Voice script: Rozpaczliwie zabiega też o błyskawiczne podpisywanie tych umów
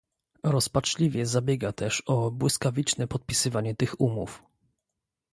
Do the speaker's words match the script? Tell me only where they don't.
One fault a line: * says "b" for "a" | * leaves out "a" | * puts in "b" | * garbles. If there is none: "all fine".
all fine